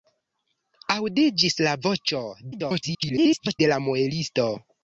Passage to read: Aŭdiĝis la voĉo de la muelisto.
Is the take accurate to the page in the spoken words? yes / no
no